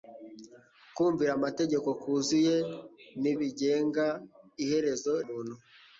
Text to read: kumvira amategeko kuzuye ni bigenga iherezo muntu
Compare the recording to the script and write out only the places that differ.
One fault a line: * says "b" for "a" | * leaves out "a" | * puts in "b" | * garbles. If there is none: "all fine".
all fine